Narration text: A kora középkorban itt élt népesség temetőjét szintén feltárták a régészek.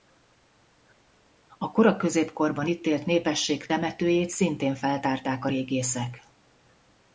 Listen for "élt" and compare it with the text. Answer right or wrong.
right